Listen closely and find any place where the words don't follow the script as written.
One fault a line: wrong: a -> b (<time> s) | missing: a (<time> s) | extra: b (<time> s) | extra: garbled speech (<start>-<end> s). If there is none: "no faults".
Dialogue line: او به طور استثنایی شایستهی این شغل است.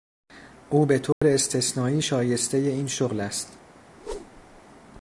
no faults